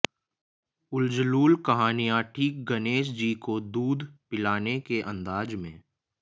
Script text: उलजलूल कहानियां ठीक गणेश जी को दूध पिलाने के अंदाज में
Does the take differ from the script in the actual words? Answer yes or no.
no